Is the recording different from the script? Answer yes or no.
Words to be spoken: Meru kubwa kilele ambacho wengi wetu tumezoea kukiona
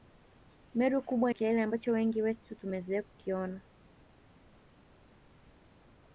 no